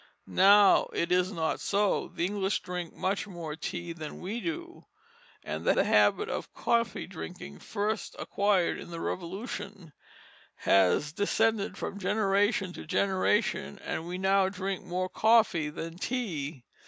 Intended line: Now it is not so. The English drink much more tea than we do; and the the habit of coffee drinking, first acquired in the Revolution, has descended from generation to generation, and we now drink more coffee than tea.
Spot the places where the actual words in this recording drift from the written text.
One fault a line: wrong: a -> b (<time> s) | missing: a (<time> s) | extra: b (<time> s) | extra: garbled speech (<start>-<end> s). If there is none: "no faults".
no faults